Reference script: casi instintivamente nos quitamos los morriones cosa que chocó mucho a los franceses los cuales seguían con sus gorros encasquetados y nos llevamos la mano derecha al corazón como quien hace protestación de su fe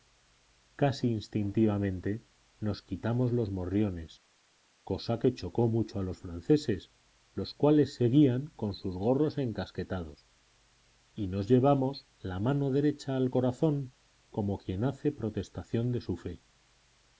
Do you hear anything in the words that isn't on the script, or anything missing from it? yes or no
no